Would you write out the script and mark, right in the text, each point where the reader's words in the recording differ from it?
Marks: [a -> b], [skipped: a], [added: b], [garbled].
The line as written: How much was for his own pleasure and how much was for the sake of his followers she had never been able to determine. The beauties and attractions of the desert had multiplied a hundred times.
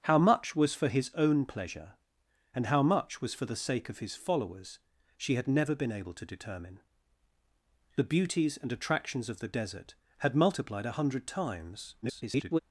How much was for his own pleasure and how much was for the sake of his followers she had never been able to determine. The beauties and attractions of the desert had multiplied a hundred times. [garbled]